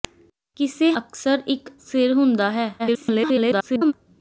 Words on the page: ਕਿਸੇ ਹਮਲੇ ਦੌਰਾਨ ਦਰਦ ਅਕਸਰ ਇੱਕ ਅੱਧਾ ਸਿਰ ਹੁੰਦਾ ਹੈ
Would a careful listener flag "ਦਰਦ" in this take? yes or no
yes